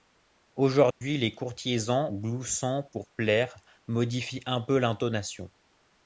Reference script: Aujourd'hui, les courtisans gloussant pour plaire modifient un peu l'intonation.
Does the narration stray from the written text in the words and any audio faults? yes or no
yes